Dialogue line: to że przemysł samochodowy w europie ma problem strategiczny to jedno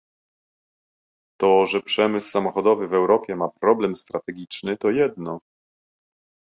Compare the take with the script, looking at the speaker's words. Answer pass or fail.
pass